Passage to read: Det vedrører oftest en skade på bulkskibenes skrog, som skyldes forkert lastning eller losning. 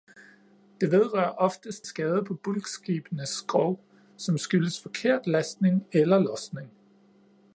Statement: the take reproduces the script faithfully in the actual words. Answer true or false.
false